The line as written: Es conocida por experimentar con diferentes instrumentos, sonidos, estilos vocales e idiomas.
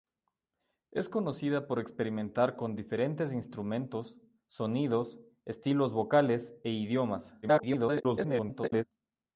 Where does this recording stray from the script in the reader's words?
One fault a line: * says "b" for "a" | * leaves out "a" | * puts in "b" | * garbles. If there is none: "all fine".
* garbles